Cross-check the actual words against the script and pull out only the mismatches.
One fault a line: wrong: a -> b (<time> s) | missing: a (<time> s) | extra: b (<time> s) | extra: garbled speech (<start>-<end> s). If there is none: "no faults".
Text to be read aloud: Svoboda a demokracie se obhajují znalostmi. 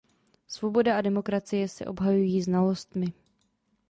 no faults